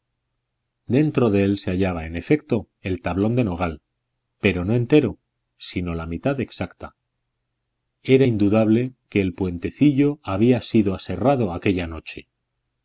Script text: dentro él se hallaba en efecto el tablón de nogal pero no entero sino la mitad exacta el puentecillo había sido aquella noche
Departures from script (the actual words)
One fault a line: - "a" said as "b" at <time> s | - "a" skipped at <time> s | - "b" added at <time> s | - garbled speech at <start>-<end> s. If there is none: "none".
- "de" added at 1.3 s
- "era indudable que" added at 8.0 s
- "aserrado" added at 10.9 s